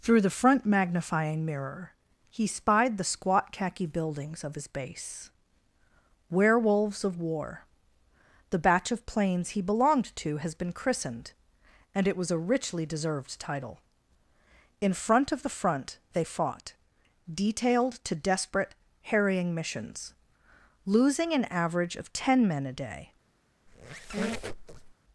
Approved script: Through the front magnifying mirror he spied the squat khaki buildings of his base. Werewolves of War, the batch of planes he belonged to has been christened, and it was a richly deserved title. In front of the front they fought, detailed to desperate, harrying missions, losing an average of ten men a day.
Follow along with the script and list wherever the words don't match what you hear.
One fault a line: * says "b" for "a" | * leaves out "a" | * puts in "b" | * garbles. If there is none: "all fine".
all fine